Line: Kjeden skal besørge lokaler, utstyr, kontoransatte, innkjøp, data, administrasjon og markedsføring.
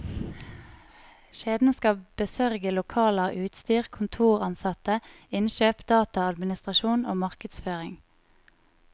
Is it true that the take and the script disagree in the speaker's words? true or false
false